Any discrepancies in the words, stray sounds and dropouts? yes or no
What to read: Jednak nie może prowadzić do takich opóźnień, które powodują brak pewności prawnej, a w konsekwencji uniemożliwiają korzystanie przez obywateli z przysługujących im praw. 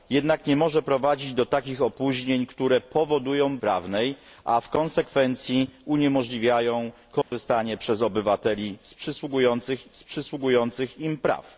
yes